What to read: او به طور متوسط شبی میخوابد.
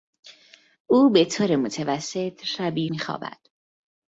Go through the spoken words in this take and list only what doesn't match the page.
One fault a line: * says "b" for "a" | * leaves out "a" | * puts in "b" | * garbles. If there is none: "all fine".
all fine